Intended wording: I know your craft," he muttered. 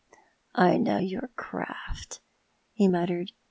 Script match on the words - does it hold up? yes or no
yes